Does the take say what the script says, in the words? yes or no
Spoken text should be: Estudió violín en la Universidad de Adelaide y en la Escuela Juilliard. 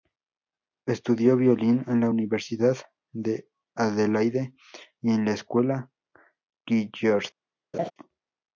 yes